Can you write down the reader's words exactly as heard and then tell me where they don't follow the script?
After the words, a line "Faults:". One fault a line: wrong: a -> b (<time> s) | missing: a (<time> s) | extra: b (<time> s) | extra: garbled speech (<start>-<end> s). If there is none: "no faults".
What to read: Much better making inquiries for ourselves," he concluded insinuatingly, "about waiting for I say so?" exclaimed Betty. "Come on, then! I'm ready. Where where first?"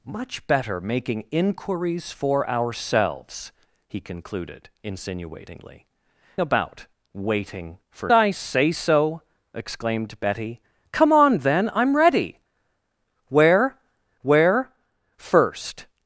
Much better making inquiries for ourselves," he concluded insinuatingly, "about waiting for I say so?" exclaimed Betty. "Come on, then! I'm ready. Where where first?"
Faults:
no faults